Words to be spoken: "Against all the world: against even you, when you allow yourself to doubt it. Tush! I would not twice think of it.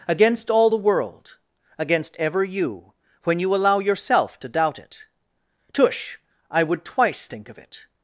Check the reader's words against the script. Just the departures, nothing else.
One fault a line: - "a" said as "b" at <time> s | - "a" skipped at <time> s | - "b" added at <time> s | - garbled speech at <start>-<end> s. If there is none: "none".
- "even" said as "ever" at 2.2 s
- "not" skipped at 6.8 s